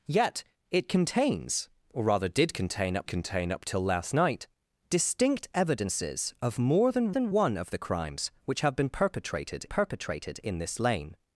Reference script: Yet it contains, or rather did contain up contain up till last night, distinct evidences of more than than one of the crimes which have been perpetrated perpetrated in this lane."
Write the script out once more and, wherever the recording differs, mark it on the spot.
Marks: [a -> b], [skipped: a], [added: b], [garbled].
Yet it contains, or rather did contain up contain up till last night, distinct evidences of more than than one of the crimes which have been perpetrated perpetrated in this lane."